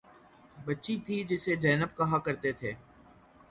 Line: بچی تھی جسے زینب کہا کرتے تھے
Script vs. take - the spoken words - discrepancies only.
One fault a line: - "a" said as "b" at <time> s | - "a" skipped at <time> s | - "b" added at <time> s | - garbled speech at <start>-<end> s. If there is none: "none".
none